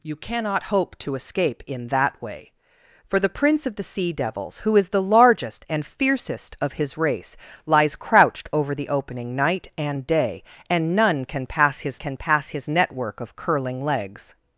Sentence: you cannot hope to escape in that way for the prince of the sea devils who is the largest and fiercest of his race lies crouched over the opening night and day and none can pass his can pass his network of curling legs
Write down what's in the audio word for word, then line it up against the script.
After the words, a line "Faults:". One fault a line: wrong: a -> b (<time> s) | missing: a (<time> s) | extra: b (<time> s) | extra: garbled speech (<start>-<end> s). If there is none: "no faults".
you cannot hope to escape in that way for the prince of the sea devils who is the largest and fiercest of his race lies crouched over the opening night and day and none can pass his can pass his network of curling legs
Faults:
no faults